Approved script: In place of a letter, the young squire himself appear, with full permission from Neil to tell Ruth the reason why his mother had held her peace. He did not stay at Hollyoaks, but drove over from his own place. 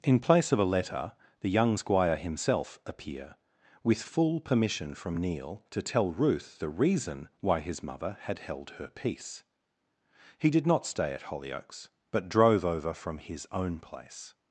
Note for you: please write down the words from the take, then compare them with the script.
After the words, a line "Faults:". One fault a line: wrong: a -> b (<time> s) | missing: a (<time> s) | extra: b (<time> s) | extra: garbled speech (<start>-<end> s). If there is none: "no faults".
In place of a letter, the young squire himself appear, with full permission from Neil to tell Ruth the reason why his mother had held her peace. He did not stay at Hollyoaks, but drove over from his own place.
Faults:
no faults